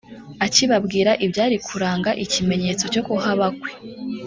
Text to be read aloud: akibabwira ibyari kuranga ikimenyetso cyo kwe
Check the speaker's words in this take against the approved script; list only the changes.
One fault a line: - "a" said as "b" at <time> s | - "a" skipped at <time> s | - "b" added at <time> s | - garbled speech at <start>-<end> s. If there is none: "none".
- "kuhaba" added at 3.1 s